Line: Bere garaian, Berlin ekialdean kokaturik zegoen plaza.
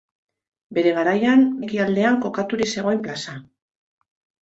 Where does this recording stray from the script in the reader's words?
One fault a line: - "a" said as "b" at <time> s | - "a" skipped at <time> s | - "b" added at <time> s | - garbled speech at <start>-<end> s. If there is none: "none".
- "Berlin" skipped at 1.4 s